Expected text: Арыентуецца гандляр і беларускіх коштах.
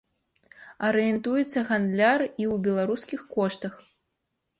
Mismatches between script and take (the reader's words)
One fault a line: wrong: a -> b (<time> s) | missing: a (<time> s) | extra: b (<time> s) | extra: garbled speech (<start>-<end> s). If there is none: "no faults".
extra: ў (2.4 s)